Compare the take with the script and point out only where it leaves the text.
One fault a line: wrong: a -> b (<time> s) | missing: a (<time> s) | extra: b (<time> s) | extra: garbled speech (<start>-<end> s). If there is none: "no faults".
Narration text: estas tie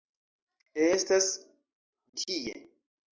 no faults